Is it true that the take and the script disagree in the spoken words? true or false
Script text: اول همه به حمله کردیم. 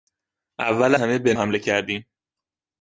false